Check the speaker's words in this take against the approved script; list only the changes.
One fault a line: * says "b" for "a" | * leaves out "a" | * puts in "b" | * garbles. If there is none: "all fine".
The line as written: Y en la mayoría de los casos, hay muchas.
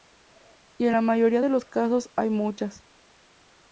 all fine